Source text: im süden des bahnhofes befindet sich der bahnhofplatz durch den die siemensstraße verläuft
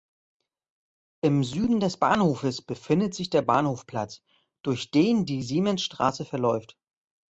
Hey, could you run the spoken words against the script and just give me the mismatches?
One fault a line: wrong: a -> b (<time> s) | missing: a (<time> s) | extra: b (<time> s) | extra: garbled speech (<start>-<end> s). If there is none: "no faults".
no faults